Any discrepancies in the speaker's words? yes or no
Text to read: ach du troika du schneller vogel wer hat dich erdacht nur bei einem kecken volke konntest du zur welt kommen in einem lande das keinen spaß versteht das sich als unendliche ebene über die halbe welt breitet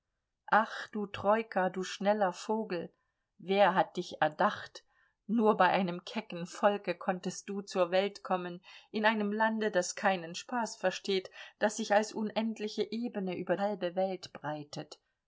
yes